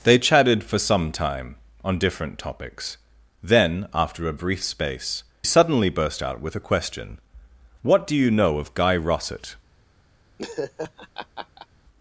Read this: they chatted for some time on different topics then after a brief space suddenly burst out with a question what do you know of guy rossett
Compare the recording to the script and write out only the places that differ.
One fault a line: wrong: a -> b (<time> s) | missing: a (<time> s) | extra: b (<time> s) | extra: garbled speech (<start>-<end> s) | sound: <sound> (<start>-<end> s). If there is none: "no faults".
sound: laugh (10.4-11.7 s)